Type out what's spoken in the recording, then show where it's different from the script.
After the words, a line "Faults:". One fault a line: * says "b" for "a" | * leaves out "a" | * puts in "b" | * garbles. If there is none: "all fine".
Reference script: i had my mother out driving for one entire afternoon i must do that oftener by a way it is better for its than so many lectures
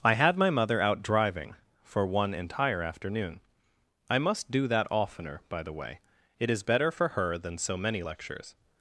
i had my mother out driving for one entire afternoon i must do that oftener by the way it is better for her than so many lectures
Faults:
* says "the" for "a"
* says "her" for "its"